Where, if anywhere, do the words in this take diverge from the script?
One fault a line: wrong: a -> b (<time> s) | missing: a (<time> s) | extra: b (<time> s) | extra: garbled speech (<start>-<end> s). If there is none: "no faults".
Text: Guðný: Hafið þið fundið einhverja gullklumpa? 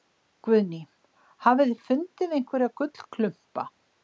no faults